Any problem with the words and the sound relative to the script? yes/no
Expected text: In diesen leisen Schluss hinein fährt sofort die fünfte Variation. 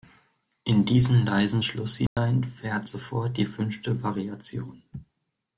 yes